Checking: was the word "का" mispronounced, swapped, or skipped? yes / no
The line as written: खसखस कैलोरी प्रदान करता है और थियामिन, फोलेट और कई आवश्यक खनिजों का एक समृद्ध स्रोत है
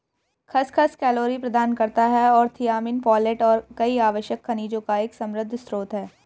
no